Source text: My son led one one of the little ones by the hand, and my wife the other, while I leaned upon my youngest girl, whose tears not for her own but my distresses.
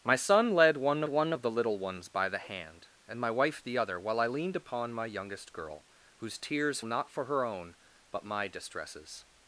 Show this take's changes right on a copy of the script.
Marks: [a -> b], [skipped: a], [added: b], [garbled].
My son led one one of the little ones by the hand, and my wife the other, while I leaned upon my youngest girl, whose tears not for her own but my distresses.